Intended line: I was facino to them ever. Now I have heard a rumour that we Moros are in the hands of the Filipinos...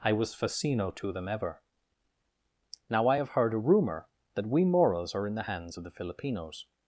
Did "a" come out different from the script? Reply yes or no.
no